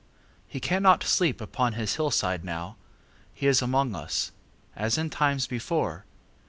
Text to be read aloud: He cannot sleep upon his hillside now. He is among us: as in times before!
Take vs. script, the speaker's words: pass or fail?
pass